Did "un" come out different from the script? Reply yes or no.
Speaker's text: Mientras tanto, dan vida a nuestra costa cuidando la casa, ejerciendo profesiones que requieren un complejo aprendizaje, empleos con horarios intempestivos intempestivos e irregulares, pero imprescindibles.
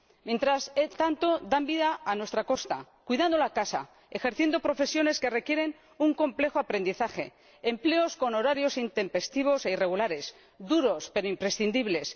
no